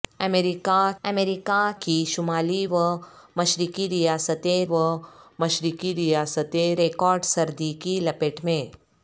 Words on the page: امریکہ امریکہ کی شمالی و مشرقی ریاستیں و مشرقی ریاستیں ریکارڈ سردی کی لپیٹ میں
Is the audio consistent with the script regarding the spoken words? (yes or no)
yes